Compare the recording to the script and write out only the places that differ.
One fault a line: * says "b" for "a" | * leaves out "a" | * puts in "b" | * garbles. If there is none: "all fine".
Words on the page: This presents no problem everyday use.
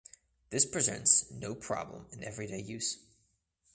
* puts in "in"